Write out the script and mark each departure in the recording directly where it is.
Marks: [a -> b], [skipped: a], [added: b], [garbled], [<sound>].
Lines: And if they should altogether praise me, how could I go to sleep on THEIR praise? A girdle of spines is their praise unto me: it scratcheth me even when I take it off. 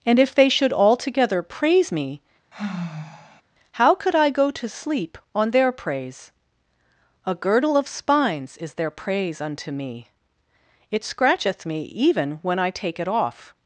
And if they should altogether praise me, [sigh] how could I go to sleep on THEIR praise? A girdle of spines is their praise unto me: it scratcheth me even when I take it off.